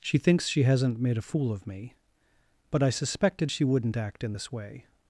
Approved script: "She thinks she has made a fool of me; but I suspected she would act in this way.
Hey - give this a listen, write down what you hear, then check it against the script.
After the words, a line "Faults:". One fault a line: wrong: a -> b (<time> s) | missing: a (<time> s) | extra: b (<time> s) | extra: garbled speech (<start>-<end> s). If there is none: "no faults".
"She thinks she hasn't made a fool of me; but I suspected she wouldn't act in this way.
Faults:
wrong: has -> hasn't (0.6 s)
wrong: would -> wouldn't (3.6 s)